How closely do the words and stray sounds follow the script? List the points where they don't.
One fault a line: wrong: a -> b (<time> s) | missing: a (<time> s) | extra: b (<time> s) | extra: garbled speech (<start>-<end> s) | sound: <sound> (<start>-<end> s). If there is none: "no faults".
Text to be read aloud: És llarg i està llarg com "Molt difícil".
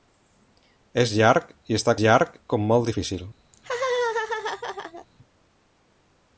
sound: laugh (3.5-5.1 s)